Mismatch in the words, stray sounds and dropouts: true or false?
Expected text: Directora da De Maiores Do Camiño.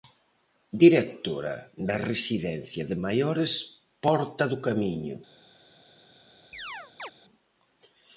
true